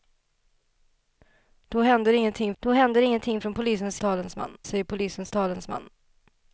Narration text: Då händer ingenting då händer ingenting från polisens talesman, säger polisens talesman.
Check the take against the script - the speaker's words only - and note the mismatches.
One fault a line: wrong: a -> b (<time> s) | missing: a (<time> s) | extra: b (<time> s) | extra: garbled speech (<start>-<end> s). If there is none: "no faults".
no faults